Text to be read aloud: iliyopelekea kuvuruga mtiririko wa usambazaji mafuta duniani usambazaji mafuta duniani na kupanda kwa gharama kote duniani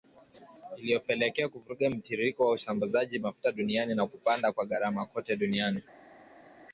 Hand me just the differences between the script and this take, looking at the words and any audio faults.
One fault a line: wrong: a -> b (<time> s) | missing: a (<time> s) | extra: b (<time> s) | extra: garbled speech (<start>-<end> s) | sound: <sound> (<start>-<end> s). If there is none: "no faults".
missing: usambazaji mafuta duniani (4.0 s)